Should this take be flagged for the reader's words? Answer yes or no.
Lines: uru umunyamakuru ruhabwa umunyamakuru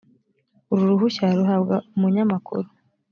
yes